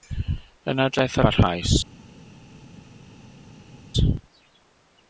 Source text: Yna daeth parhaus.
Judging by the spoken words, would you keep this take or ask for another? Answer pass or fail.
pass